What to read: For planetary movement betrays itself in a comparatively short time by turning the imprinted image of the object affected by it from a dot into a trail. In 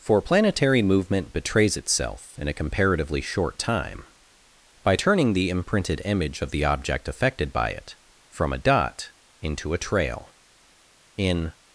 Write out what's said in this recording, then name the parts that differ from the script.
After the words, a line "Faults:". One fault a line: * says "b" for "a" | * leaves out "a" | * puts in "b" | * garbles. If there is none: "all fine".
For planetary movement betrays itself in a comparatively short time by turning the imprinted image of the object affected by it from a dot into a trail. In
Faults:
all fine